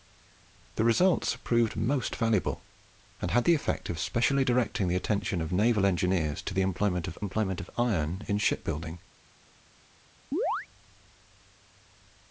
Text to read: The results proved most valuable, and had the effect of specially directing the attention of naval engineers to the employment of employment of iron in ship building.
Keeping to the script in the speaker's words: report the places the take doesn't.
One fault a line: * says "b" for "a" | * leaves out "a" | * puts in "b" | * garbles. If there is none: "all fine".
all fine